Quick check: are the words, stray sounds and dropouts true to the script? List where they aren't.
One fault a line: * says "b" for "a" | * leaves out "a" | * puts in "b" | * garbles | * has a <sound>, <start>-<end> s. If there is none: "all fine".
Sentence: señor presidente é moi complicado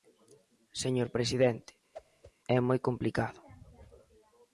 * has a whoosh, 1.9-2.3 s